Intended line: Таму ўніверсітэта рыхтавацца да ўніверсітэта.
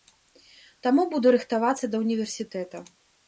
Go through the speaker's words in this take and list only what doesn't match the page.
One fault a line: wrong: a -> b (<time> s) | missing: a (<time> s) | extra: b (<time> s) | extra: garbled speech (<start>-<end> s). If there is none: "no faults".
wrong: ўніверсітэта -> буду (1.1 s)